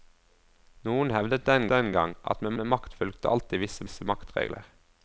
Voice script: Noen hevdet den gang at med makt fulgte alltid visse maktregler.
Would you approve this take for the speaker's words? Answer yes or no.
no